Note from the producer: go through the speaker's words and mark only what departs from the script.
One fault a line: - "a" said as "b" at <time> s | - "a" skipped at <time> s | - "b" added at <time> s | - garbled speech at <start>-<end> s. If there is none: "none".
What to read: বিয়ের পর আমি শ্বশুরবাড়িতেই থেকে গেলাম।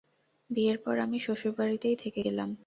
none